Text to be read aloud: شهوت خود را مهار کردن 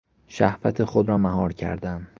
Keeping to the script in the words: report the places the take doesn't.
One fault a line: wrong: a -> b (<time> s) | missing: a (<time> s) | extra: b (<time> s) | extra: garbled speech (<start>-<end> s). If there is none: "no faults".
no faults